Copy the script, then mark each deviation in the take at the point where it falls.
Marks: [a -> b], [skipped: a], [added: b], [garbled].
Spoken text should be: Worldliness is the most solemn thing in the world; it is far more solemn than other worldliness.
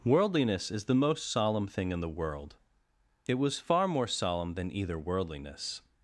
Worldliness is the most solemn thing in the world; it [is -> was] far more solemn than [other -> either] worldliness.